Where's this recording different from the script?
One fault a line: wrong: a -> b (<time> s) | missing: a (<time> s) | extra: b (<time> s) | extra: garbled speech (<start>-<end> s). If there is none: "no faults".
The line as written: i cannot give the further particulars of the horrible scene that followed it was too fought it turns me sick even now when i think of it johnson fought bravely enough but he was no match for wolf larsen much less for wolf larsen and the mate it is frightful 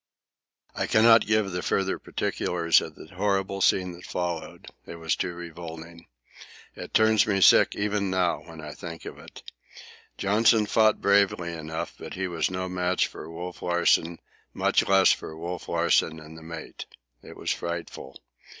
wrong: fought -> revolting (5.3 s)
wrong: is -> was (17.3 s)